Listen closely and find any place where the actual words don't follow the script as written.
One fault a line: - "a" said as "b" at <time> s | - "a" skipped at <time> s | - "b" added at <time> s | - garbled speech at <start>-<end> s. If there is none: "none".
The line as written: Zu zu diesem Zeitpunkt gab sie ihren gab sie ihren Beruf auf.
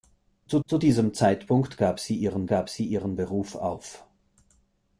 none